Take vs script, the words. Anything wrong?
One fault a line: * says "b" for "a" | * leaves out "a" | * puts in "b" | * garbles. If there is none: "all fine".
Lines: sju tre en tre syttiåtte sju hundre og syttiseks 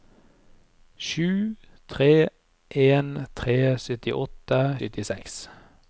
* leaves out "sju hundre og"